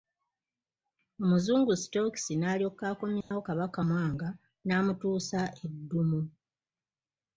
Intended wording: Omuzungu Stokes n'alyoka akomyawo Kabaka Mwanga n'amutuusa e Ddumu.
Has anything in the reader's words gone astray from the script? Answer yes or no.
no